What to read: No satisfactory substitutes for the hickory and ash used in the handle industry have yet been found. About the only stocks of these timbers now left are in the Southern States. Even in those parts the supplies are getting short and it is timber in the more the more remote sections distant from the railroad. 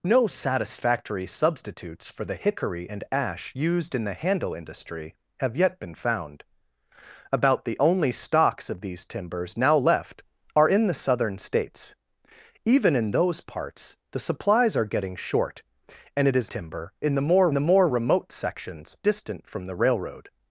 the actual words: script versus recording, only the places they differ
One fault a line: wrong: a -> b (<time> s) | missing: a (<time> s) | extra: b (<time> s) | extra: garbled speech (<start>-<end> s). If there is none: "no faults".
no faults